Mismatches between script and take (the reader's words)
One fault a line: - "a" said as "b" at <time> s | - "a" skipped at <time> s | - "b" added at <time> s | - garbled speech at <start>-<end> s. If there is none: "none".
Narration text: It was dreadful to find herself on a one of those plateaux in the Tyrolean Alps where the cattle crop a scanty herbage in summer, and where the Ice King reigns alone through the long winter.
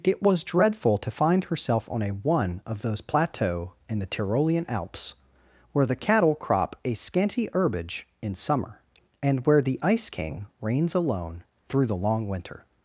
none